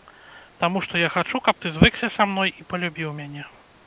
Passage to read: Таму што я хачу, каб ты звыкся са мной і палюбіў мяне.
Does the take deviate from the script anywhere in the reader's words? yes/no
no